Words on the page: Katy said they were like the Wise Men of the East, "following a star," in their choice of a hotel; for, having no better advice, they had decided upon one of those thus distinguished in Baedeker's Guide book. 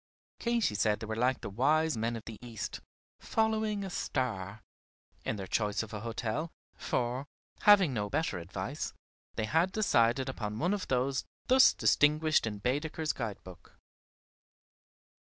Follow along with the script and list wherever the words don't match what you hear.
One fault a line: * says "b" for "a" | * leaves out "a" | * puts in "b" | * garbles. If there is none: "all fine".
all fine